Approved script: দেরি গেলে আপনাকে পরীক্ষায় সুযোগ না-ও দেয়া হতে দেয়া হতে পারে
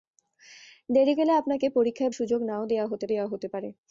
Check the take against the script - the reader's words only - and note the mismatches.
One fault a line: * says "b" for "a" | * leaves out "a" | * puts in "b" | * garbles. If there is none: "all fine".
all fine